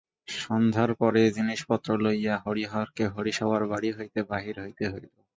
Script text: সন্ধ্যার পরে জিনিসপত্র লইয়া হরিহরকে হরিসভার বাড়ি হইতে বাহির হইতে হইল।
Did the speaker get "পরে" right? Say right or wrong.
right